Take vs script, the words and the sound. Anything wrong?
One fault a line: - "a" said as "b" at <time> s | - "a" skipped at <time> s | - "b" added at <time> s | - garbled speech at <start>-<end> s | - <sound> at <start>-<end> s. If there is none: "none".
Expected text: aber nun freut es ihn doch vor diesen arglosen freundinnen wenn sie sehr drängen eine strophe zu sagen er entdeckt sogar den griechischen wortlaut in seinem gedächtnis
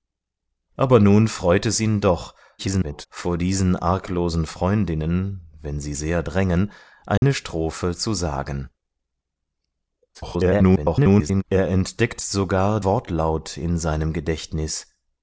- garbled speech at 2.6-3.1 s
- dropout at 7.2-7.2 s
- garbled speech at 10.1-11.4 s
- "den griechischen" skipped at 12.8 s